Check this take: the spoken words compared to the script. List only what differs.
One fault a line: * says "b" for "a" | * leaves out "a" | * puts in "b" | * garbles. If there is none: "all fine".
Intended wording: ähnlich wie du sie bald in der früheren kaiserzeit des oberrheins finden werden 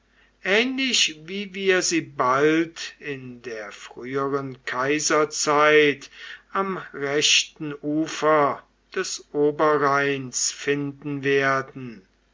* says "wir" for "du"
* puts in "am rechten ufer"